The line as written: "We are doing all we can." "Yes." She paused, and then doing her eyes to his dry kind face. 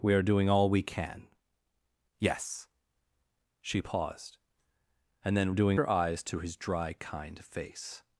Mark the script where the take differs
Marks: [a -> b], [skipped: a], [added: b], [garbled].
"We are doing all we can." "Yes." She paused, and then doing her eyes to his dry kind face.